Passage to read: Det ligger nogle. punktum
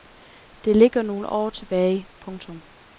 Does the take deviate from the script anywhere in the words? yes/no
yes